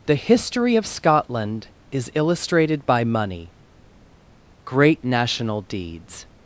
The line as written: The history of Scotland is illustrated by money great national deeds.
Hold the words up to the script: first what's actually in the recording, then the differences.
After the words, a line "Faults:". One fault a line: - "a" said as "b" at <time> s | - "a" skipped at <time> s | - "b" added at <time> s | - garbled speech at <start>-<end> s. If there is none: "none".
The history of Scotland is illustrated by money great national deeds.
Faults:
none